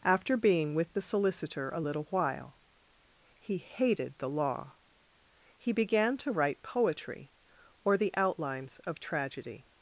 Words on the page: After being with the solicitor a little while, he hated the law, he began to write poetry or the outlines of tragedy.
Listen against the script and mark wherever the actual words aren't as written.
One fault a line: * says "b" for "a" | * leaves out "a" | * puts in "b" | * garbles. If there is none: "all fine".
all fine